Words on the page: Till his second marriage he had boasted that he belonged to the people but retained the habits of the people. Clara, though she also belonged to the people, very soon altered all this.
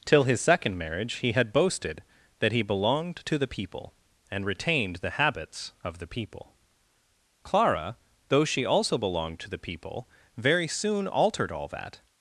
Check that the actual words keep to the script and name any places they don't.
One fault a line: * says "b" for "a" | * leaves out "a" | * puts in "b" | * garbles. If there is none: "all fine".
* says "and" for "but"
* says "that" for "this"